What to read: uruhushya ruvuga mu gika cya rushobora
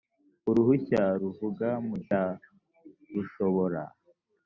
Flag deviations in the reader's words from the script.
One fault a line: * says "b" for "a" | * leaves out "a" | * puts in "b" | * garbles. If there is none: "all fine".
* leaves out "gika"